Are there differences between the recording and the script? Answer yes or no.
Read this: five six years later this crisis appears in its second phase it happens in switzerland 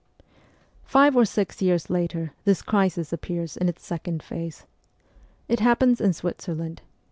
yes